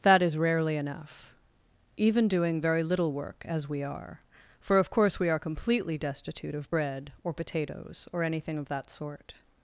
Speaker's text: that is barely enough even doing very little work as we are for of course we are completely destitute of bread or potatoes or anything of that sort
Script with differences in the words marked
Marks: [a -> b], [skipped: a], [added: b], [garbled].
that is [barely -> rarely] enough even doing very little work as we are for of course we are completely destitute of bread or potatoes or anything of that sort